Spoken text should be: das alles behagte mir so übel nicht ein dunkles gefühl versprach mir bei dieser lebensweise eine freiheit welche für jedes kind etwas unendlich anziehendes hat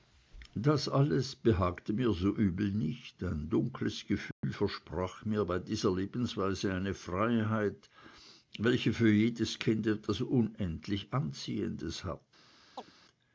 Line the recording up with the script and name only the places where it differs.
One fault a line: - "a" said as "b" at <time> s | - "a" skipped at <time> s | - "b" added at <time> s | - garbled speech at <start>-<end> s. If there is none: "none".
none